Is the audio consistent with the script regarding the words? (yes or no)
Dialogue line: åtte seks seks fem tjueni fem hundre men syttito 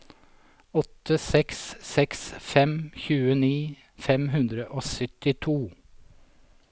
no